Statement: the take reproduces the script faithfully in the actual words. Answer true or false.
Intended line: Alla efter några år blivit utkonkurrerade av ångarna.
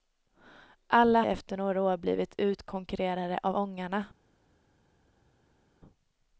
true